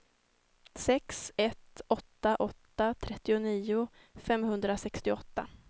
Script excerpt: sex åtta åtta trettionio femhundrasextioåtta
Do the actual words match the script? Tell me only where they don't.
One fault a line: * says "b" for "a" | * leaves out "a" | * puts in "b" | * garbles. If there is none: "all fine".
* puts in "ett"